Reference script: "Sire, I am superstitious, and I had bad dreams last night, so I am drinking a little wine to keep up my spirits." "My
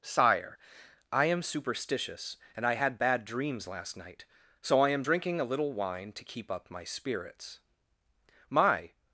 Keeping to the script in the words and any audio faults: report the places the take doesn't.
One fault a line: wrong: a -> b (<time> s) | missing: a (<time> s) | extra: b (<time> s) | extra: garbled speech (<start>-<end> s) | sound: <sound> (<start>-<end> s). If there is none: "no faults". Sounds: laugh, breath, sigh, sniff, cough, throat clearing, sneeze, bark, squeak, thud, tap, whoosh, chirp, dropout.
no faults